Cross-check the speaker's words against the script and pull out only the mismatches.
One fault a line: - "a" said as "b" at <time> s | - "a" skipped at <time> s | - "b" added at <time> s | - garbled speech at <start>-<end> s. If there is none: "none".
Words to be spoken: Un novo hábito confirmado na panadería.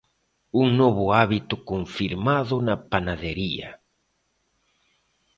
none